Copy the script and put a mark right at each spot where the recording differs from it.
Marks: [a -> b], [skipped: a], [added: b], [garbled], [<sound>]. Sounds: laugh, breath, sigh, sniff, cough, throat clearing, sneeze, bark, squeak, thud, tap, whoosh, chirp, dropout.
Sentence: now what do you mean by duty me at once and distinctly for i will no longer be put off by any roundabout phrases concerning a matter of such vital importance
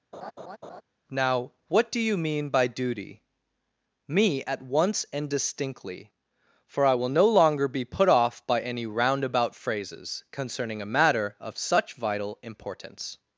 [laugh] now what do you mean by duty me at once and distinctly for i will no longer be put off by any roundabout phrases concerning a matter of such vital importance